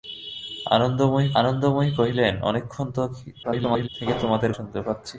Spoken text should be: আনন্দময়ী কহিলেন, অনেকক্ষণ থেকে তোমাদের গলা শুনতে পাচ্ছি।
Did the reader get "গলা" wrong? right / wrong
wrong